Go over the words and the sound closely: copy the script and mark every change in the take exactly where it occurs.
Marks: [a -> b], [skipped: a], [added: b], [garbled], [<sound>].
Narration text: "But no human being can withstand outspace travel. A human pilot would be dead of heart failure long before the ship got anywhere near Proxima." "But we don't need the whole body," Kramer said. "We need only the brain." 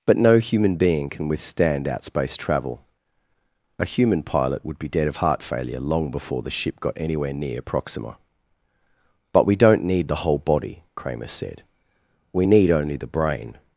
"But no human being can withstand outspace travel. A human pilot would be dead of heart failure long before the ship got anywhere near Proxima." "But we don't need the whole body," Kramer said. "We need only the brain."